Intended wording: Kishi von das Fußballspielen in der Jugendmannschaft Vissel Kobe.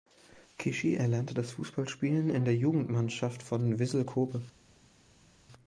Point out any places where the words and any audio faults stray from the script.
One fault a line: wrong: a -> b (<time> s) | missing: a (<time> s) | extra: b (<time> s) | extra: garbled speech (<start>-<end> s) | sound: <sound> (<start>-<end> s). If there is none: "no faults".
wrong: von -> erlernte (0.9 s)
extra: von (3.4 s)